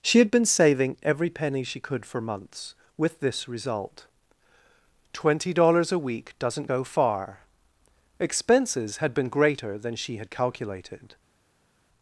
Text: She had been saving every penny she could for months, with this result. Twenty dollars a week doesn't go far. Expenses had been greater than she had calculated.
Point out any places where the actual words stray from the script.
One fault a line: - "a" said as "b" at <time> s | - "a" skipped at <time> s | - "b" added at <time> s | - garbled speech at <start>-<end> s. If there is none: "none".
none